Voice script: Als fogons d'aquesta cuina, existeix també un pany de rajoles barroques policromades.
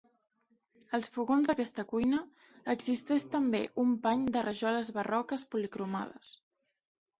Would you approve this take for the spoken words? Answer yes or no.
yes